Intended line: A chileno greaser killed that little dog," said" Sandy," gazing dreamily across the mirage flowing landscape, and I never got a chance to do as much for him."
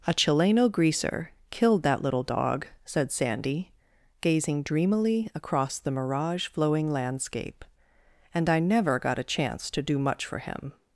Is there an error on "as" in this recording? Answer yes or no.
yes